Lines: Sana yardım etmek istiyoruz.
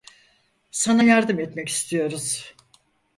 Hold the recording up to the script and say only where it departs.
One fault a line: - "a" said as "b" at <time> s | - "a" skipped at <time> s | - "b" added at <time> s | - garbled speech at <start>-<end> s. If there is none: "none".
none